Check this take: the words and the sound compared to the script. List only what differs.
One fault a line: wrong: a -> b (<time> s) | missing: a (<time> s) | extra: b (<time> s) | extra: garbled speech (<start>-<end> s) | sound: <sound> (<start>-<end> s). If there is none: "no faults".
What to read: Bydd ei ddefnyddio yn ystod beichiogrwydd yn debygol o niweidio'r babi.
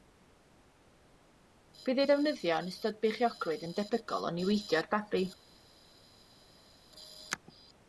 no faults